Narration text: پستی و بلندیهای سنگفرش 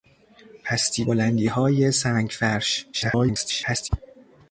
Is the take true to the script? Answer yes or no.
no